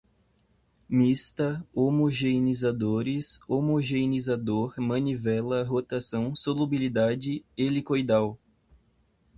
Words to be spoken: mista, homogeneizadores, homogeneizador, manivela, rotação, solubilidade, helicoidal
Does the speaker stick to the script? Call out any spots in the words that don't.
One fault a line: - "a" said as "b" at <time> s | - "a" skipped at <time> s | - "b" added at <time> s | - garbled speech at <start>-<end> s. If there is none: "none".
none